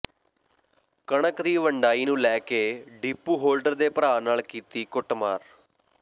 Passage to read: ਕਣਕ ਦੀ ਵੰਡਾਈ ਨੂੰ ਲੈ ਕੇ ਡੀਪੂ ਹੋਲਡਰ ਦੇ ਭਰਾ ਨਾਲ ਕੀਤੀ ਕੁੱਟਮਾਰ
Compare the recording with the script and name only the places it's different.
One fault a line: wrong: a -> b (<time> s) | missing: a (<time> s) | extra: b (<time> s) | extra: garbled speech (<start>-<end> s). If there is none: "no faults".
no faults